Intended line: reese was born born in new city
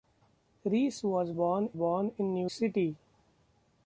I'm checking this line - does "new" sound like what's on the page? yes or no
yes